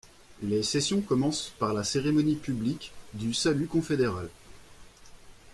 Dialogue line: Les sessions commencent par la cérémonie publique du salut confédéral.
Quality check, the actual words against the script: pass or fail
pass